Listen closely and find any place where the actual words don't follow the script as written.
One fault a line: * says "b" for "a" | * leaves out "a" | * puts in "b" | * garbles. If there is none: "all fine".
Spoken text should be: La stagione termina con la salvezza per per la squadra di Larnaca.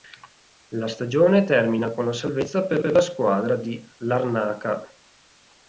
all fine